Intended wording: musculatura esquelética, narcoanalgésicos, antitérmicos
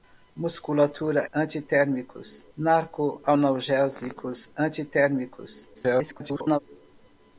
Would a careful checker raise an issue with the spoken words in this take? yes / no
yes